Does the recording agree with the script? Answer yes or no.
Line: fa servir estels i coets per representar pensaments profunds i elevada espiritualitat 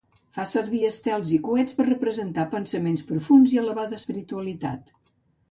yes